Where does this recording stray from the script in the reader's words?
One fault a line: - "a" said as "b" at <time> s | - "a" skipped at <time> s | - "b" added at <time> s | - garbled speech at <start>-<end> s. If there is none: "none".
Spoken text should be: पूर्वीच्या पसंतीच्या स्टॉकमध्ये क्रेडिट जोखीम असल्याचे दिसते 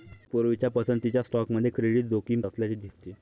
none